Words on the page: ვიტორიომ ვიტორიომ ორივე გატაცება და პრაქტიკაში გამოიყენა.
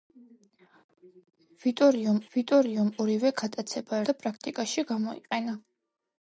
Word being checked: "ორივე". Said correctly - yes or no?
yes